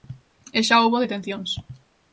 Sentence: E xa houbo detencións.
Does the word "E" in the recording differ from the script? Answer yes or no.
no